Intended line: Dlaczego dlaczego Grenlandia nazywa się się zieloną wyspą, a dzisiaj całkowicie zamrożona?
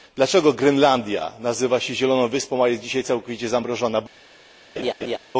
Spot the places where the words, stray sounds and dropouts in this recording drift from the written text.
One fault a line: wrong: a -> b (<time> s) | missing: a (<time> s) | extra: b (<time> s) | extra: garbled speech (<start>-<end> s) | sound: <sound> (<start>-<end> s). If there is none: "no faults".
missing: dlaczego (0.5 s)
missing: się (1.9 s)
extra: jest (2.7 s)
sound: laugh (4.8-5.2 s)